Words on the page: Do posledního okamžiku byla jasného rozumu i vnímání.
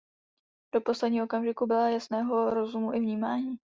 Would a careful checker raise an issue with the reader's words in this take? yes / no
no